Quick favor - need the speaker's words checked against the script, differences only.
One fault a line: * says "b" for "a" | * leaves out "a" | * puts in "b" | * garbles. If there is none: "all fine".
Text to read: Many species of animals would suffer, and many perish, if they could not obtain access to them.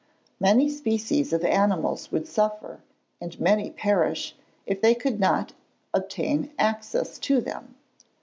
all fine